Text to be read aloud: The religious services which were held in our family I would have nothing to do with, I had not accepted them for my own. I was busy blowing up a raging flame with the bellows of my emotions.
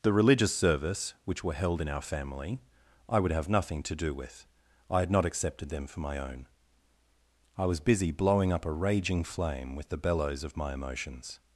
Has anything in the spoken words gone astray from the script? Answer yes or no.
yes